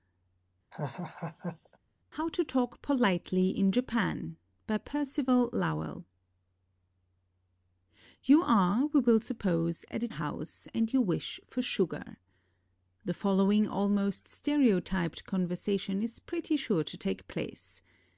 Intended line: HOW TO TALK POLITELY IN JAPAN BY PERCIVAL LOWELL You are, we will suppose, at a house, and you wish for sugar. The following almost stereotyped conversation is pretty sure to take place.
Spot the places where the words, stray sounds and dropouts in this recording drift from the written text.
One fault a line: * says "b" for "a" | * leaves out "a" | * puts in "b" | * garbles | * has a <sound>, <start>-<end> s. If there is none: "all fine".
* has a laugh, 0.7-1.8 s